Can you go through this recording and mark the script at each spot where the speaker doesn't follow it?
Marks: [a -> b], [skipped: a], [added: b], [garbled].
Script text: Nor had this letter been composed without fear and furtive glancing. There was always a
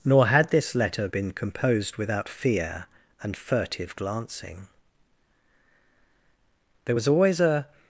Nor had this letter been composed without fear and furtive glancing. There was always a